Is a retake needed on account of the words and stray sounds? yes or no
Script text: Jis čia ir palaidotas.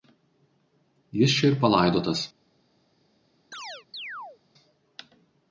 yes